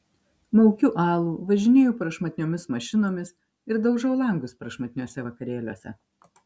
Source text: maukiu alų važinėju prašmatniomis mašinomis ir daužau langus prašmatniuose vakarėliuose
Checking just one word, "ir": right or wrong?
right